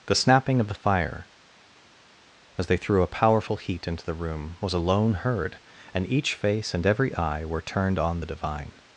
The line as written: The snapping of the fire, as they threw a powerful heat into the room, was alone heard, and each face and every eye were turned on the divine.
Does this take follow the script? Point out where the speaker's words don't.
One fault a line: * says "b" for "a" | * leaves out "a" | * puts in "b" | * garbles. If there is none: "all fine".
all fine